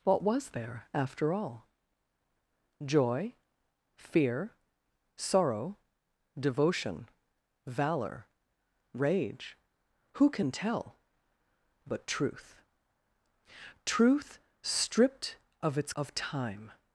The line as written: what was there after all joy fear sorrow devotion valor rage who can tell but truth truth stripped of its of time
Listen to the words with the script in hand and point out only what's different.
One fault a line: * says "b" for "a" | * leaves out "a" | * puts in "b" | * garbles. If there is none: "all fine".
all fine